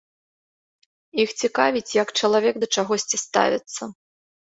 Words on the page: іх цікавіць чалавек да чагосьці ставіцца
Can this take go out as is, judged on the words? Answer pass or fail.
fail